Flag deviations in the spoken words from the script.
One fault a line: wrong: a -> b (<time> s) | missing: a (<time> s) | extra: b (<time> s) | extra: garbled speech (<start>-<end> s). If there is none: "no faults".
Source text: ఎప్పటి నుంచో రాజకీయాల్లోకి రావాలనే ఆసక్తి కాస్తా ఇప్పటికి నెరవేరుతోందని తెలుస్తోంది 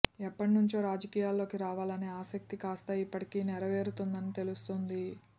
no faults